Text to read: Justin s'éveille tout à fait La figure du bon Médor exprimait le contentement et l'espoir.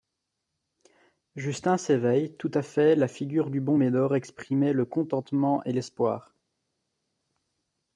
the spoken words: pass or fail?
pass